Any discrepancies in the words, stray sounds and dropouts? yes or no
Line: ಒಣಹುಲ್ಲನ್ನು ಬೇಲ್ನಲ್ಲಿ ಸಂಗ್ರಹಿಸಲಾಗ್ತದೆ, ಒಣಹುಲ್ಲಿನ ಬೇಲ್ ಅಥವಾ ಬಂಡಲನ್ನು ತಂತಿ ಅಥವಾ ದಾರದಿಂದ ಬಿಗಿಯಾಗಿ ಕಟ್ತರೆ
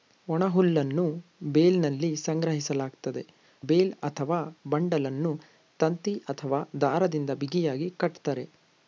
yes